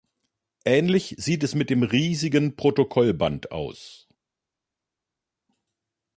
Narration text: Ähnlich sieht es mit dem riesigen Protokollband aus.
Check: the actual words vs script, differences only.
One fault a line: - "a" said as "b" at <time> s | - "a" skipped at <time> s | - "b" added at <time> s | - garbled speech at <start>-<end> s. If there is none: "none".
none